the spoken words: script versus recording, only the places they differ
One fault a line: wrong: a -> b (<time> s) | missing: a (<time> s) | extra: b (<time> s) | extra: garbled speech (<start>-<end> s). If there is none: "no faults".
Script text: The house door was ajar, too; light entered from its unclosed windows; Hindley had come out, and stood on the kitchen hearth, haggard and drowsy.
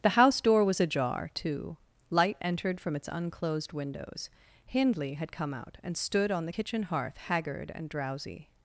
no faults